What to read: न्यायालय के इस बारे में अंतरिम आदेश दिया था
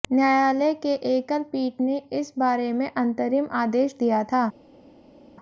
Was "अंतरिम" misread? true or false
false